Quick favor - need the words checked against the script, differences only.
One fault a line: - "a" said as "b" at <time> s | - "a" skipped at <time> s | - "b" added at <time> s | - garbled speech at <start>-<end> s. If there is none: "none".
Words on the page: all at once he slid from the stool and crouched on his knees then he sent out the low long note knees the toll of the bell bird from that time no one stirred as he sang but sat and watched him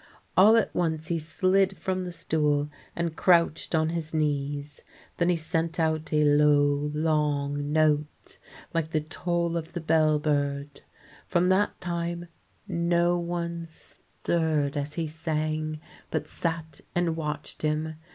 - "the" said as "a" at 6.1 s
- "knees" said as "like" at 8.7 s